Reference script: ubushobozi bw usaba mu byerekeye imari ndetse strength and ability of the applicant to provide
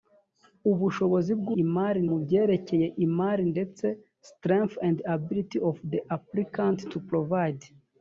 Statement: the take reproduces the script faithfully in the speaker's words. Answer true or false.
false